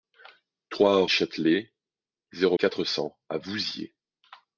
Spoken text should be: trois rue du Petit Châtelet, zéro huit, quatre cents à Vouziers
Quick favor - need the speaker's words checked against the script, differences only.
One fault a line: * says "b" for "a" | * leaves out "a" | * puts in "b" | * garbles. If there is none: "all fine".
* leaves out "rue du Petit"
* leaves out "huit"